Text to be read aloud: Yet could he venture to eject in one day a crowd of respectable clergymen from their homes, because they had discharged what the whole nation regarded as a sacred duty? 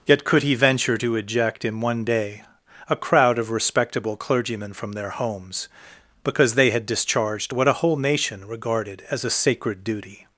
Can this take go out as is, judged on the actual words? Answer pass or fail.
fail